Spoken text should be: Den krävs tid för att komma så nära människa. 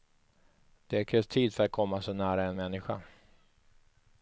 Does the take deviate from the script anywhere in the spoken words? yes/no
yes